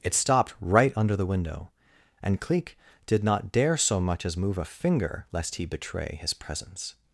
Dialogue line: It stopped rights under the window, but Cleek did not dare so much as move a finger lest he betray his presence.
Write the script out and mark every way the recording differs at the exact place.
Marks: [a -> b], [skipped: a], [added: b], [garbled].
It stopped [rights -> right] under the window, [but -> and] Cleek did not dare so much as move a finger lest he betray his presence.